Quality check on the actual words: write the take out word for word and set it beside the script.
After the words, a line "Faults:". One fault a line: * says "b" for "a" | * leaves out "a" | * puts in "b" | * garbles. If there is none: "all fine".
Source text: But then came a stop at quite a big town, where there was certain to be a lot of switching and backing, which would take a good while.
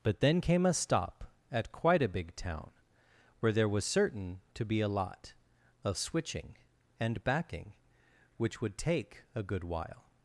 But then came a stop at quite a big town, where there was certain to be a lot of switching and backing, which would take a good while.
Faults:
all fine